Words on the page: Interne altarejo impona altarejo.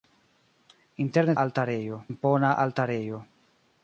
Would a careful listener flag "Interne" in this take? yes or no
no